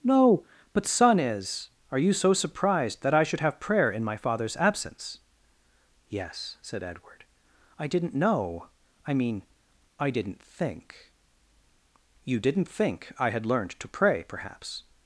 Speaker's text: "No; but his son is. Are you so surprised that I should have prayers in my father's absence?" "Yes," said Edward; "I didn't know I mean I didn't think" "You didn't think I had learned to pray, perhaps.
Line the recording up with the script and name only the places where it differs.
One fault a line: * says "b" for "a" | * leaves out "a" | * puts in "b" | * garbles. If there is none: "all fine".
* leaves out "his"
* says "prayer" for "prayers"